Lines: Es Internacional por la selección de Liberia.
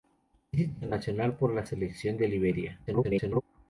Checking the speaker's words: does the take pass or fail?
fail